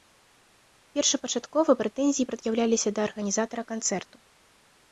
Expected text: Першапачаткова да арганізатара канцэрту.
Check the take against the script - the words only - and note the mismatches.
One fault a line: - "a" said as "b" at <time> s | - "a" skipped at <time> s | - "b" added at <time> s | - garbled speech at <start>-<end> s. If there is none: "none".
- "прэтэнзіі прад'яўляліся" added at 1.8 s